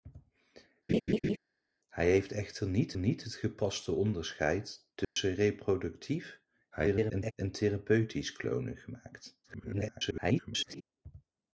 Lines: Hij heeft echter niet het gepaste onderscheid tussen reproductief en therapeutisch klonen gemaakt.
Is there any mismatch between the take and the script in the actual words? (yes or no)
yes